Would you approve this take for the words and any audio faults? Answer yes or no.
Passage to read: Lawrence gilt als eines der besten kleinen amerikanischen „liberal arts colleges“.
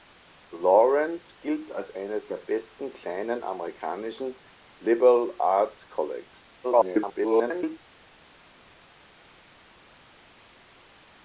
no